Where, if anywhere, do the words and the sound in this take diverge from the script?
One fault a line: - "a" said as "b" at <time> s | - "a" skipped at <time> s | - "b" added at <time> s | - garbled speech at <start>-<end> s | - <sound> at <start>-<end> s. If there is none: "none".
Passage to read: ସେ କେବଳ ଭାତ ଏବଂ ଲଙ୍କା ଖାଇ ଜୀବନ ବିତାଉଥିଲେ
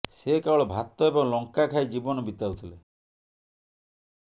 none